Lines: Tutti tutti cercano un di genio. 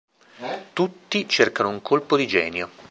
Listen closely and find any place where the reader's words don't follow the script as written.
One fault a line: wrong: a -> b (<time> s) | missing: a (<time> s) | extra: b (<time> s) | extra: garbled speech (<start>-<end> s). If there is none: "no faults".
missing: tutti (1.3 s)
extra: colpo (1.8 s)